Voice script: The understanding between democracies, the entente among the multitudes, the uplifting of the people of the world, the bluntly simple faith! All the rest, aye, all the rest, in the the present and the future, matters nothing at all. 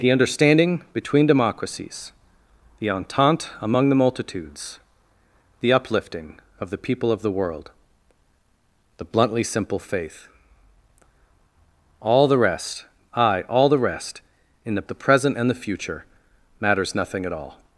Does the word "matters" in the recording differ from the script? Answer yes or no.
no